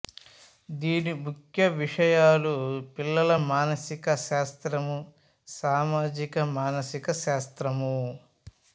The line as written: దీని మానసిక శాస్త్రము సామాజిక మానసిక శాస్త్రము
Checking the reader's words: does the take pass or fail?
fail